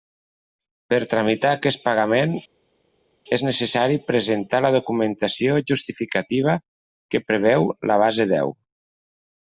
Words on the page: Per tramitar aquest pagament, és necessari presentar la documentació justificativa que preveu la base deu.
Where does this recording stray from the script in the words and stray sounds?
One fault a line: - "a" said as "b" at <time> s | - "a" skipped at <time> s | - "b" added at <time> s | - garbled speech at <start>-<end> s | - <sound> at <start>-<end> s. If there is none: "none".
none